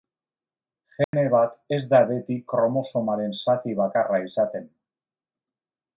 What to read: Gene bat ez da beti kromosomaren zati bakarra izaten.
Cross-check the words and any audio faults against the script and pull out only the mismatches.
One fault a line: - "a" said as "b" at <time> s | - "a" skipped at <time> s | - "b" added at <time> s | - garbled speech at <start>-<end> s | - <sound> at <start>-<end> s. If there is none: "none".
- dropout at 1.0-1.1 s